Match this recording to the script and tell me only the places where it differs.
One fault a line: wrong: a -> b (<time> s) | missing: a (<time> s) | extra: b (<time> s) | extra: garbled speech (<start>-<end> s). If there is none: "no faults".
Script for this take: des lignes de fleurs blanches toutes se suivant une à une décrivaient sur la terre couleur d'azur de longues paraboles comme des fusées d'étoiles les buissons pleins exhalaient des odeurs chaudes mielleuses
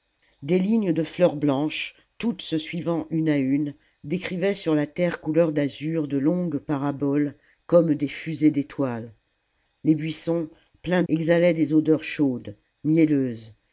no faults